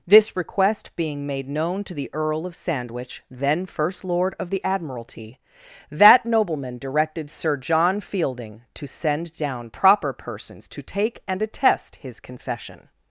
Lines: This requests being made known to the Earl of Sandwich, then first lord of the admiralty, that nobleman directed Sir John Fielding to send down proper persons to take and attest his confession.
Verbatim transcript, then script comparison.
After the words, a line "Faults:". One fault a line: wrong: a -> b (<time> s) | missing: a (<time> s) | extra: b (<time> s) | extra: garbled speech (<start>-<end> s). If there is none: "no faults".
This request being made known to the Earl of Sandwich, then first lord of the admiralty, that nobleman directed Sir John Fielding to send down proper persons to take and attest his confession.
Faults:
wrong: requests -> request (0.3 s)